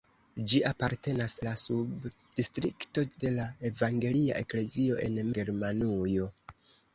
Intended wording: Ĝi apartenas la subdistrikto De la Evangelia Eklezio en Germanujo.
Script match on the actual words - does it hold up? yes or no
yes